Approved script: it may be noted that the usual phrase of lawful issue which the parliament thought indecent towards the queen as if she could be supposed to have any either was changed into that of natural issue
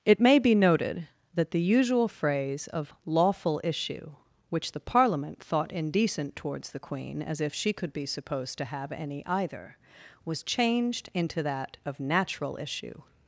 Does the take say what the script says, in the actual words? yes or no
yes